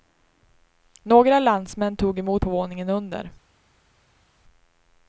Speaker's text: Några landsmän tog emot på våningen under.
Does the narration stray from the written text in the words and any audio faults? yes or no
no